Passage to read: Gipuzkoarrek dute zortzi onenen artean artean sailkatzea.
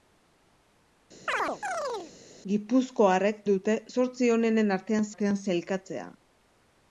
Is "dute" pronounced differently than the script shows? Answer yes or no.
no